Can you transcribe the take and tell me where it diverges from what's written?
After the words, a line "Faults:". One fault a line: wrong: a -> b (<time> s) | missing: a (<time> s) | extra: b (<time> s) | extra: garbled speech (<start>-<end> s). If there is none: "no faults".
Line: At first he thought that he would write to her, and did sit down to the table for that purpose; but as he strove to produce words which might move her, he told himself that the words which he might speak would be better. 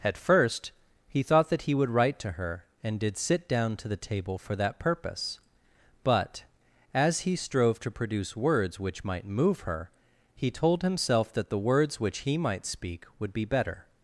At first he thought that he would write to her, and did sit down to the table for that purpose; but as he strove to produce words which might move her, he told himself that the words which he might speak would be better.
Faults:
no faults